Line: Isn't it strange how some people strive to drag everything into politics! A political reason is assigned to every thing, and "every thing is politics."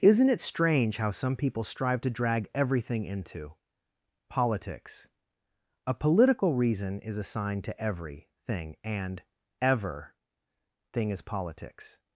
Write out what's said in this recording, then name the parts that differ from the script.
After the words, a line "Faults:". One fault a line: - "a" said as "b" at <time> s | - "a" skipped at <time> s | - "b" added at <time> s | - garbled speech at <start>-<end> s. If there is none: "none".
Isn't it strange how some people strive to drag everything into politics! A political reason is assigned to every thing, and "ever thing is politics."
Faults:
- "every" said as "ever" at 9.6 s